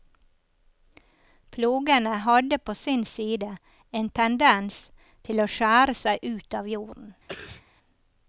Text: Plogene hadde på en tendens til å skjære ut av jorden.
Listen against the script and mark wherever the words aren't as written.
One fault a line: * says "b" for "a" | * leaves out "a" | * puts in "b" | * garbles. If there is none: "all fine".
* puts in "sin side"
* puts in "seg"